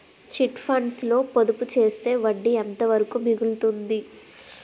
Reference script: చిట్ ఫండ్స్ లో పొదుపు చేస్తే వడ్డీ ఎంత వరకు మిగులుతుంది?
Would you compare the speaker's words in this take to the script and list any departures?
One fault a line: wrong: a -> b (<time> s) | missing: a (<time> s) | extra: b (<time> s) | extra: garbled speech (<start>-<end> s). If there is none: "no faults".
no faults